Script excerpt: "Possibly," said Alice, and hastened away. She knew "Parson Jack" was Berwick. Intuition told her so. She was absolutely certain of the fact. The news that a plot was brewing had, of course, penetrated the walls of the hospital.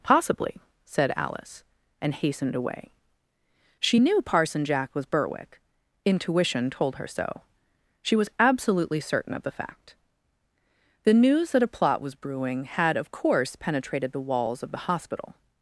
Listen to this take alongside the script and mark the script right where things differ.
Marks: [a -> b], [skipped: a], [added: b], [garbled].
"Possibly," said Alice, and hastened away. She knew "Parson Jack" was Berwick. Intuition told her so. She was absolutely certain of the fact. The news that a plot was brewing had, of course, penetrated the walls of the hospital.